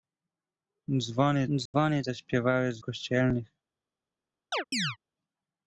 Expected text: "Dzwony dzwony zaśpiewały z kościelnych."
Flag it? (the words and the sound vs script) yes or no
yes